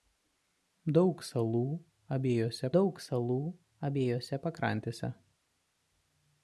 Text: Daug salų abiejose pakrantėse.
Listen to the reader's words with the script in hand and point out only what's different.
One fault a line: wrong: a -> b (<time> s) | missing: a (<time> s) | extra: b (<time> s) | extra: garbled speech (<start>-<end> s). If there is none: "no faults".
extra: daug salų abiejose (2.8 s)